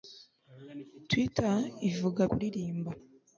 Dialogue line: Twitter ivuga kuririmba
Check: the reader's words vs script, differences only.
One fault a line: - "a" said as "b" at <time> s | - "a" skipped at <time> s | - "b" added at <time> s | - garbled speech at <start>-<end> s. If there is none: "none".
none